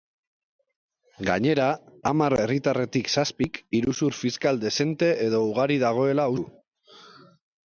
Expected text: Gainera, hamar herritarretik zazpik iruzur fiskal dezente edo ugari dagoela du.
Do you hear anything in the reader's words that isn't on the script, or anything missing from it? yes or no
no